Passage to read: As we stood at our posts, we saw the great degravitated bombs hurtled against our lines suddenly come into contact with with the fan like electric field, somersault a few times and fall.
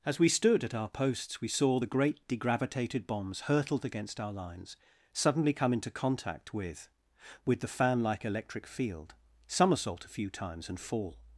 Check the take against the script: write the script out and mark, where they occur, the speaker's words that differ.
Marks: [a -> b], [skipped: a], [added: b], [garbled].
As we stood at our posts, we saw the great degravitated bombs hurtled against our lines suddenly come into contact with with the fan like electric field, somersault a few times and fall.